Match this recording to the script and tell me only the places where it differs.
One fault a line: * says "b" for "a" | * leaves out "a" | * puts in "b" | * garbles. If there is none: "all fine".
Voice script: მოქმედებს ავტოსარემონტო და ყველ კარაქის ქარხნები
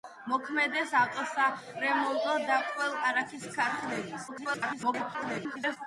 * garbles